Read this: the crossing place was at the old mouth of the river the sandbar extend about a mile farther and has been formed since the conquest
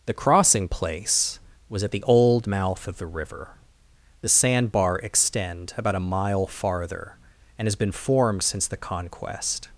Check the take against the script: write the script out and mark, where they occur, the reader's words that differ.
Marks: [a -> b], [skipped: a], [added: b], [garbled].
the crossing place was at the old mouth of the river the sandbar extend about a mile farther and has been formed since the conquest